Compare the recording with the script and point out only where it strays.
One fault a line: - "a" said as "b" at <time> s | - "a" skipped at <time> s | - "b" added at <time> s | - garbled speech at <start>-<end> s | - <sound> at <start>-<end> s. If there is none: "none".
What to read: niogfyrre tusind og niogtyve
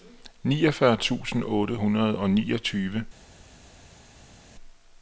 - "otte hundrede" added at 1.4 s